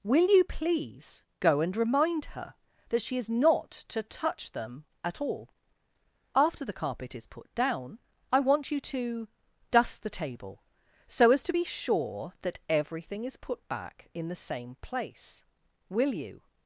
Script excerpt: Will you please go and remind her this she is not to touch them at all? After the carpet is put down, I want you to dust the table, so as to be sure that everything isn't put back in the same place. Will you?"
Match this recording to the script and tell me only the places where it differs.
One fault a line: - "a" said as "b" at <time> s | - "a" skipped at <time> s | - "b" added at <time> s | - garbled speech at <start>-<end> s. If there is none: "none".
- "this" said as "that" at 2.9 s
- "isn't" said as "is" at 13.2 s